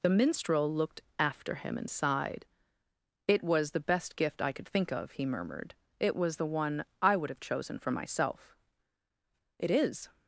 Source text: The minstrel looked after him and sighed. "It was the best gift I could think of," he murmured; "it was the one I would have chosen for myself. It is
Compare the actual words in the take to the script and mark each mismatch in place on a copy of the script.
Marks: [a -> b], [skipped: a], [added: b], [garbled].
The minstrel looked after him and sighed. "It was the best gift I could think of," he murmured; "it was the one I would have chosen for myself. It is